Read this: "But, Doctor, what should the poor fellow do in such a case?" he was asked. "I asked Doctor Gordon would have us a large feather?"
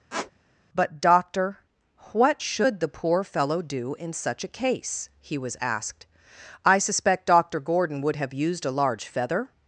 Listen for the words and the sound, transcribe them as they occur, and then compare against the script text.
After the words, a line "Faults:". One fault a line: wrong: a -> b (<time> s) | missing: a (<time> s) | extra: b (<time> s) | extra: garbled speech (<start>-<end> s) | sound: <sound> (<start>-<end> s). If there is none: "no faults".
"But, Doctor, what should the poor fellow do in such a case?" he was asked. "I suspect Doctor Gordon would have used a large feather?"
Faults:
sound: squeak (0.1-0.3 s)
wrong: asked -> suspect (6.8 s)
wrong: us -> used (8.3 s)